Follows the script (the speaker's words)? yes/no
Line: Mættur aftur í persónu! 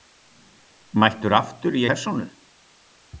yes